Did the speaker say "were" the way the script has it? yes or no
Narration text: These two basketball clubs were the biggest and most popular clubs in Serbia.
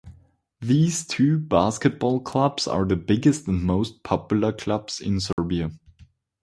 no